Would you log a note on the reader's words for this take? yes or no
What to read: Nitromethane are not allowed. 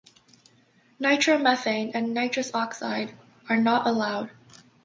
yes